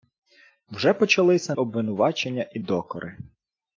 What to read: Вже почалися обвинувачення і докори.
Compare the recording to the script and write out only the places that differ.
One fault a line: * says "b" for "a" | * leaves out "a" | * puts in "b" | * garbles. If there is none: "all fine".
all fine